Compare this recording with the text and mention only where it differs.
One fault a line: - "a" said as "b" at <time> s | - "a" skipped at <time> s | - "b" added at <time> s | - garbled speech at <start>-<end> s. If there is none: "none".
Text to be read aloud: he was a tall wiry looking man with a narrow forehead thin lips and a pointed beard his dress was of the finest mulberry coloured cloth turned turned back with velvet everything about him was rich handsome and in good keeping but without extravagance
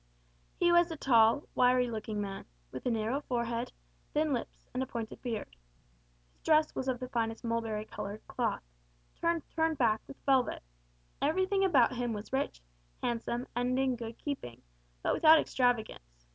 none